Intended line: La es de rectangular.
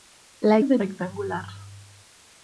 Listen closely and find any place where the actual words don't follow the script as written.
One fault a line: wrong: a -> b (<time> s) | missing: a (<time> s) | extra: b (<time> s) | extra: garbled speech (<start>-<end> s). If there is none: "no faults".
no faults